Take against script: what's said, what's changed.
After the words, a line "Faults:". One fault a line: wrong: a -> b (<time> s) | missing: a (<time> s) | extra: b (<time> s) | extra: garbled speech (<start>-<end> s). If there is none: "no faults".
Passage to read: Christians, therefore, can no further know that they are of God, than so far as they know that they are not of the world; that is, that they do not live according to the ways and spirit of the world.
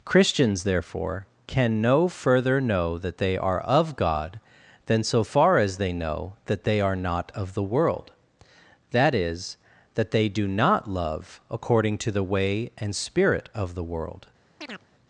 Christians, therefore, can no further know that they are of God, than so far as they know that they are not of the world; that is, that they do not love according to the way and spirit of the world.
Faults:
wrong: live -> love (10.9 s)
wrong: ways -> way (12.2 s)